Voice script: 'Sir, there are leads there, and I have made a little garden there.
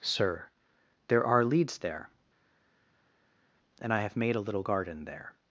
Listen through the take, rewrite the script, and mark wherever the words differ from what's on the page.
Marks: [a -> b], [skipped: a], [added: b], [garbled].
'Sir, there are leads there, and I have made a little garden there.